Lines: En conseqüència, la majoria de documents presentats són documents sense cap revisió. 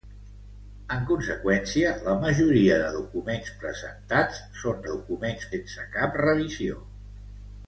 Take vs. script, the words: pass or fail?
pass